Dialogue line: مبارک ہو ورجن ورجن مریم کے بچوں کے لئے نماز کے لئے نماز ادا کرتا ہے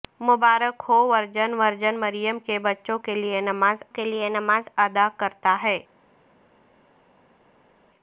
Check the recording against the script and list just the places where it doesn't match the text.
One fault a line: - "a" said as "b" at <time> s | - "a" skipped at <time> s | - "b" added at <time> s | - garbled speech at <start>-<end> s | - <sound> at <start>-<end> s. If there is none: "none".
none